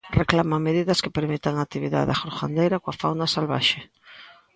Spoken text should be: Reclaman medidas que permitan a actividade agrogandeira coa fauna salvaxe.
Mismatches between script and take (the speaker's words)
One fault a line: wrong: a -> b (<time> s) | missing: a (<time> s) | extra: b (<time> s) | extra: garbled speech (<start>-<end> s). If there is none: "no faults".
no faults